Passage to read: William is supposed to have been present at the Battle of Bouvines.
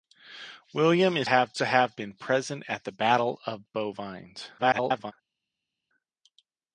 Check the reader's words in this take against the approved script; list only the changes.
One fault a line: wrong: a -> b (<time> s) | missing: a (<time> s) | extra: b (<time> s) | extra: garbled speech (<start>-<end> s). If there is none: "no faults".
wrong: supposed -> have (1.2 s)
extra: garbled speech (4.6-5.1 s)